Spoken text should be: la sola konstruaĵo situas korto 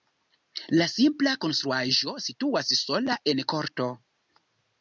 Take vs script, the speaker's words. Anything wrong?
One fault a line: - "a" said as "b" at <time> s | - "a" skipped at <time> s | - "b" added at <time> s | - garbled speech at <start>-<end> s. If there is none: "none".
- "sola" said as "simpla" at 0.9 s
- "sola en" added at 2.8 s